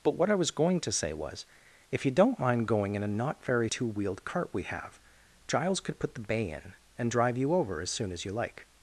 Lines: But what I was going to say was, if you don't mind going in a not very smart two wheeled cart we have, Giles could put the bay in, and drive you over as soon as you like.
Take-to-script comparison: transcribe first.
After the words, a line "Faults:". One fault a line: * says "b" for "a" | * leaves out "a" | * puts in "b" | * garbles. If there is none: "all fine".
But what I was going to say was, if you don't mind going in a not very two wheeled cart we have, Giles could put the bay in, and drive you over as soon as you like.
Faults:
* leaves out "smart"